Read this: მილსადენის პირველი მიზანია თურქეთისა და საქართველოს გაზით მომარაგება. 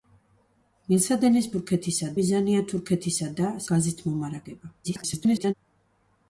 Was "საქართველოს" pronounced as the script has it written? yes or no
no